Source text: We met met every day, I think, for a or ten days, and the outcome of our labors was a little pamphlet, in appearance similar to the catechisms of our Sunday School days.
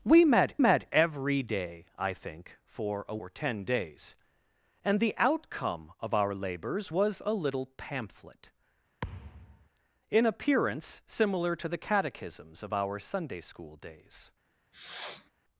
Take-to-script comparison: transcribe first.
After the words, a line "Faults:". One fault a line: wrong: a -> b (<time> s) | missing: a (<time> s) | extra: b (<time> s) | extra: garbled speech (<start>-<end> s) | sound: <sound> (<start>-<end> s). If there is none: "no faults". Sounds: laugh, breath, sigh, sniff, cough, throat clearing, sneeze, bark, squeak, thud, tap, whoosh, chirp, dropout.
We met met every day, I think, for a or ten days, and the outcome of our labors was a little pamphlet, in appearance similar to the catechisms of our Sunday School days.
Faults:
sound: thud (9.0-9.7 s)
sound: sniff (14.7-15.3 s)